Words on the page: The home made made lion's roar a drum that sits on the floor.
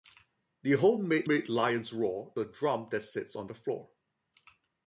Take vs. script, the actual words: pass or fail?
pass